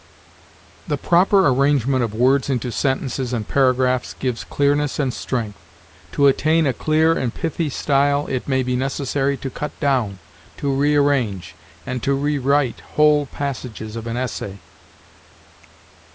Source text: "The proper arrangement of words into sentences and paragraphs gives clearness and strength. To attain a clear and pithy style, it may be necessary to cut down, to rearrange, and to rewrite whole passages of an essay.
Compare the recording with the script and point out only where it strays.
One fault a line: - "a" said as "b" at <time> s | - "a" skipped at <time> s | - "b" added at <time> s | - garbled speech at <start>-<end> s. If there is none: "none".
none